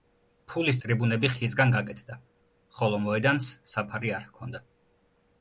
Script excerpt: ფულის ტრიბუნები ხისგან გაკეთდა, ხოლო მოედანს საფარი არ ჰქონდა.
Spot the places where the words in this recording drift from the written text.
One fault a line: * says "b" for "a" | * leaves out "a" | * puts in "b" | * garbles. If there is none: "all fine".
all fine